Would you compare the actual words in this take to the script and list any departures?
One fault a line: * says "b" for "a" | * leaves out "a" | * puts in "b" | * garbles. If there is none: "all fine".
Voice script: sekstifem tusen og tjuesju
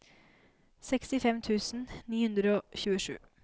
* puts in "ni hundre"